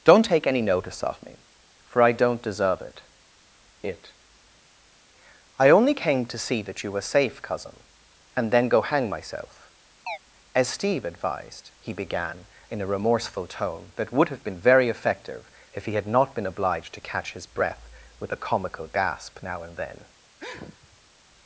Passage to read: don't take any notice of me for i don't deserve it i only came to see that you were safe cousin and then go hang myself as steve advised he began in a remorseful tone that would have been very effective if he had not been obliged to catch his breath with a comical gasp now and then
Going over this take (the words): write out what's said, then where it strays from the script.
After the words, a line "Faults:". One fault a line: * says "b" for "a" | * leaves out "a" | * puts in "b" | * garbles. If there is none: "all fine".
don't take any notice of me for i don't deserve it it i only came to see that you were safe cousin and then go hang myself as steve advised he began in a remorseful tone that would have been very effective if he had not been obliged to catch his breath with a comical gasp now and then
Faults:
* puts in "it"